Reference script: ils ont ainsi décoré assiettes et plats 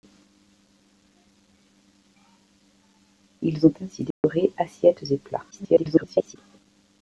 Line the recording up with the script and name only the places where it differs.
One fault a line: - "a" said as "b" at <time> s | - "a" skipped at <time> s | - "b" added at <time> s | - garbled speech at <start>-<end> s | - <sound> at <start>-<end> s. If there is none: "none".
- dropout at 4.1-4.2 s
- garbled speech at 5.5-6.4 s